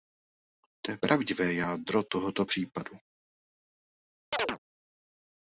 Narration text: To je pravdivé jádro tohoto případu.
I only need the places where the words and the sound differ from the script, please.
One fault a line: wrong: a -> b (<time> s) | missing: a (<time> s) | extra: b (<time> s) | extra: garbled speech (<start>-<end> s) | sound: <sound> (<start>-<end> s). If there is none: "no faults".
sound: chirp (4.3-4.6 s)